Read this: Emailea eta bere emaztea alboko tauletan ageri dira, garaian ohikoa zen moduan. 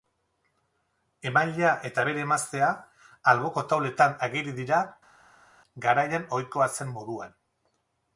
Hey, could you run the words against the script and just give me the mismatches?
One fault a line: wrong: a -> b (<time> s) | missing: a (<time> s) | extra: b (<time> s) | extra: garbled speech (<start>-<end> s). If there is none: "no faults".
no faults